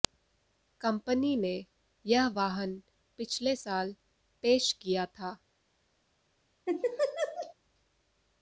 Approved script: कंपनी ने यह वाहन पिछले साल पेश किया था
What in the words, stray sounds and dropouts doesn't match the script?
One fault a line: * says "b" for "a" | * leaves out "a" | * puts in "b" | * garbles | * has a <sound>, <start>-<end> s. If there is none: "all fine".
* has a laugh, 6.7-7.5 s